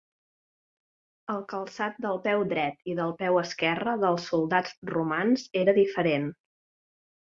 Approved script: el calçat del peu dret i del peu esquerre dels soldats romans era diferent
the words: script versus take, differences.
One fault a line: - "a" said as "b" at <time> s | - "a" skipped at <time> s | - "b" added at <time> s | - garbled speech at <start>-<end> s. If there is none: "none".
none